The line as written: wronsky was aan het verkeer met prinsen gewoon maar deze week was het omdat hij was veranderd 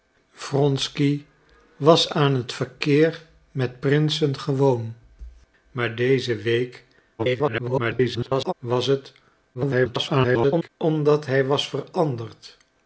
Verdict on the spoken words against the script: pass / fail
fail